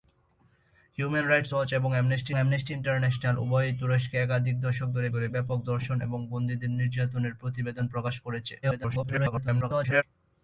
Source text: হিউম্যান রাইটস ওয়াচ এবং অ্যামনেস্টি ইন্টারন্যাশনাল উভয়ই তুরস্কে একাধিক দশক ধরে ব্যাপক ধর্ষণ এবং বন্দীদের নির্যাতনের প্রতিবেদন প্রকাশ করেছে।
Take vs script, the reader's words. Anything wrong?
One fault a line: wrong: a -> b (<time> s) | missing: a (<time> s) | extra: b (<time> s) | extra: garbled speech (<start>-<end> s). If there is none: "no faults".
extra: অ্যামনেস্টি (2.4 s)
extra: ধরে (5.1 s)
extra: garbled speech (8.6-10.0 s)